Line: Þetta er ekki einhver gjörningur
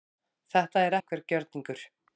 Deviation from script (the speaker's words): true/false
true